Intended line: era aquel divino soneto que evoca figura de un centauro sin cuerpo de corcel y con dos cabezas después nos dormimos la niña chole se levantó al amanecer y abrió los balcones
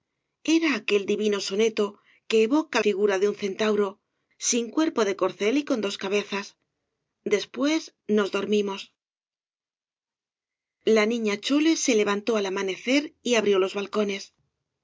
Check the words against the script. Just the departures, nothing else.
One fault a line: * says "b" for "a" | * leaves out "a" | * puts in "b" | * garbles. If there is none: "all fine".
all fine